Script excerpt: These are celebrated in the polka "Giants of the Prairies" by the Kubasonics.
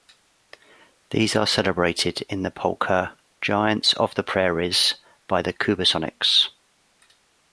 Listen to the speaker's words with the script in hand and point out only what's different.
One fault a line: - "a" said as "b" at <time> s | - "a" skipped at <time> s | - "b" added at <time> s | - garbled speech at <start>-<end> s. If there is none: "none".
none